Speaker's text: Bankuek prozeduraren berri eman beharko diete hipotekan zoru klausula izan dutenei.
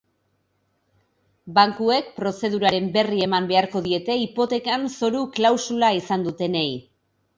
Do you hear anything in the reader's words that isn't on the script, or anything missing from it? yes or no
no